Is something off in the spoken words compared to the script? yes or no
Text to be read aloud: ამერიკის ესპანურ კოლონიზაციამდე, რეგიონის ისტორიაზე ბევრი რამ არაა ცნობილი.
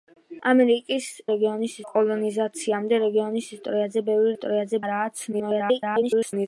yes